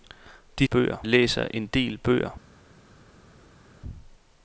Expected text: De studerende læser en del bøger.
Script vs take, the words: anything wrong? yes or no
yes